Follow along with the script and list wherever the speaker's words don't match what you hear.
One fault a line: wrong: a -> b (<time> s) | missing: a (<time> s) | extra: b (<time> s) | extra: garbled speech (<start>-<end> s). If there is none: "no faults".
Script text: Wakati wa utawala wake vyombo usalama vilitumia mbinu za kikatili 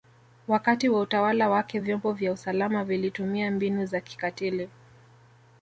extra: vya (2.1 s)